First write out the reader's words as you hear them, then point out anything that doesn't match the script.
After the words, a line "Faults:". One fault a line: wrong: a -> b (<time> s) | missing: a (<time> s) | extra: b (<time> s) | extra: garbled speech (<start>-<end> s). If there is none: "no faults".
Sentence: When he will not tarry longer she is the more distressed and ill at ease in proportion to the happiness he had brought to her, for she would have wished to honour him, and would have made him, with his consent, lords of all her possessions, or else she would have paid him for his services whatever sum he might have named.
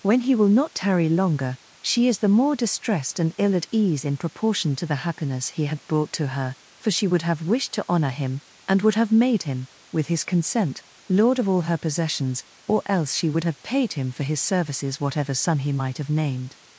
When he will not tarry longer she is the more distressed and ill at ease in proportion to the happiness he had brought to her, for she would have wished to honour him, and would have made him, with his consent, lord of all her possessions, or else she would have paid him for his services whatever sum he might have named.
Faults:
wrong: lords -> lord (11.1 s)